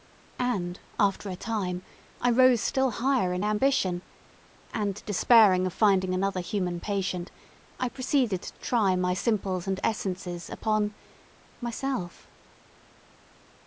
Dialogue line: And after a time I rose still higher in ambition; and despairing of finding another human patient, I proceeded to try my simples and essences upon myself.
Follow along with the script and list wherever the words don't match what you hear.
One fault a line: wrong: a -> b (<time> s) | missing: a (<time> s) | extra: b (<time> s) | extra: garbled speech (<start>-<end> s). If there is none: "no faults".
no faults